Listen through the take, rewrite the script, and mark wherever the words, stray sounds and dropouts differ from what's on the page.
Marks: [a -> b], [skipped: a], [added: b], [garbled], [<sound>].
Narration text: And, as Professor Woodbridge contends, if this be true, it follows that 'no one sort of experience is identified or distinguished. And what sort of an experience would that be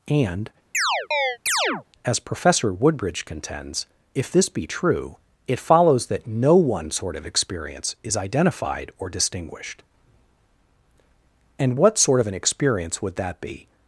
And, [chirp] as Professor Woodbridge contends, if this be true, it follows that 'no one sort of experience is identified or distinguished. And what sort of an experience would that be